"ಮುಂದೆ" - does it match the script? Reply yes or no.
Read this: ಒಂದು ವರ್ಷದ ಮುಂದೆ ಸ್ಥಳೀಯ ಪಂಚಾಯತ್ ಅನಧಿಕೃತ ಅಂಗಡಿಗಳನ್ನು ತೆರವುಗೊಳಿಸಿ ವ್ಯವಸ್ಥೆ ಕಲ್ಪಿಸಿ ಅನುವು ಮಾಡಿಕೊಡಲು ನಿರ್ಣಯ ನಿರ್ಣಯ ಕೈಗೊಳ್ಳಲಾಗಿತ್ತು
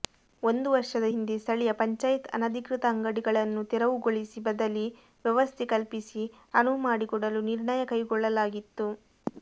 no